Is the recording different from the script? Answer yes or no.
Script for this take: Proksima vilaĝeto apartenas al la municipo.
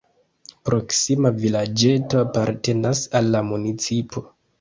no